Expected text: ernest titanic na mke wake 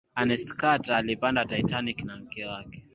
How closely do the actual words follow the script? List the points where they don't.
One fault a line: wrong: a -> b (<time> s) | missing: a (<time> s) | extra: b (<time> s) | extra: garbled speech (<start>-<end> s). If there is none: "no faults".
extra: carter alipanda (0.6 s)